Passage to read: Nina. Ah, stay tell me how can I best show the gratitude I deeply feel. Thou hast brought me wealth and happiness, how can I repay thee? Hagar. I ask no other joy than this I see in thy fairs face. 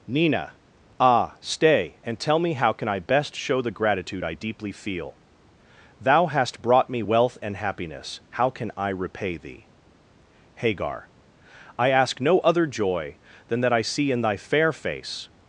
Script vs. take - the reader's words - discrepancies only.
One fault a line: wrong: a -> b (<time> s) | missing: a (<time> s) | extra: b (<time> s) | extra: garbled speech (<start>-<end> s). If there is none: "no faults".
extra: and (2.0 s)
wrong: this -> that (13.6 s)
wrong: fairs -> fair (14.4 s)